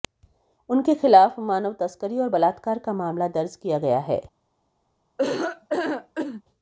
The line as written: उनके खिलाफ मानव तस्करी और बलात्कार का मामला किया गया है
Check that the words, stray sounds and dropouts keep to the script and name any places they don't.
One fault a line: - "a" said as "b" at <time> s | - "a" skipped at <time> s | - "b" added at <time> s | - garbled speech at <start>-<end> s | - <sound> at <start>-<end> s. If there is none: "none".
- "दर्ज" added at 3.3 s
- laugh at 5.2-6.4 s